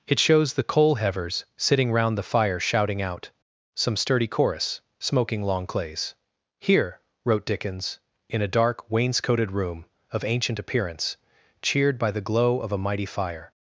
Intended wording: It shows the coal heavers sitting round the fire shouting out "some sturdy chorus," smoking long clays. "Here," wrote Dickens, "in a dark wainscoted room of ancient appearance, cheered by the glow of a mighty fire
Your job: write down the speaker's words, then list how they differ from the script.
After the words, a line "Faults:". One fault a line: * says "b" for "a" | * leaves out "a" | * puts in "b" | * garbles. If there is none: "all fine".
It shows the coal heavers sitting round the fire shouting out "some sturdy chorus," smoking long clays. "Here," wrote Dickens, "in a dark wainscoted room of ancient appearance, cheered by the glow of a mighty fire
Faults:
all fine